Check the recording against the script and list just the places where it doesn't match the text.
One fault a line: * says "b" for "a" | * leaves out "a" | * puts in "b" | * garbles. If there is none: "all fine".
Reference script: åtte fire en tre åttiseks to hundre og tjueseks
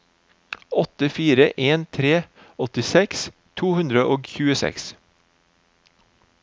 all fine